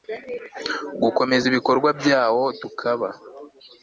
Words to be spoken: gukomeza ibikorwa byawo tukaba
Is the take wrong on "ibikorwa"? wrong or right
right